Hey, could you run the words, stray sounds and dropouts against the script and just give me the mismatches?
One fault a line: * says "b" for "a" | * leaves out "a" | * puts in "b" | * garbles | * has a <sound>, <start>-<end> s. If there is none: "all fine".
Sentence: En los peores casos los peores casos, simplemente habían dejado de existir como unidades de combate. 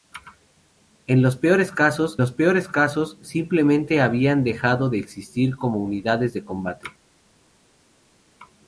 all fine